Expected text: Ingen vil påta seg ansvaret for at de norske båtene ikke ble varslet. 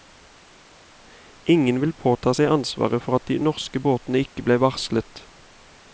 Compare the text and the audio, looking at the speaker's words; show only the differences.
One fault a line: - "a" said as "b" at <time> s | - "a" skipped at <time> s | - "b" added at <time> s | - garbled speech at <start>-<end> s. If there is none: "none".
none